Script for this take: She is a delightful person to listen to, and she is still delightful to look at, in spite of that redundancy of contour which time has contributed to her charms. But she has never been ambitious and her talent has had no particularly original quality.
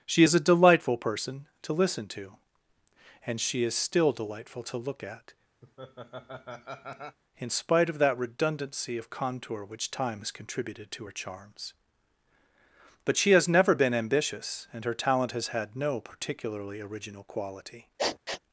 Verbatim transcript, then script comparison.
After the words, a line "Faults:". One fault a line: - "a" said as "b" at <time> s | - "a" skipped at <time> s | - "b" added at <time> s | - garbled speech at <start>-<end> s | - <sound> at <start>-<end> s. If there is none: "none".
She is a delightful person to listen to, and she is still delightful to look at, in spite of that redundancy of contour which time has contributed to her charms. But she has never been ambitious and her talent has had no particularly original quality.
Faults:
- laugh at 5.6-7.2 s
- sniff at 18.0-18.4 s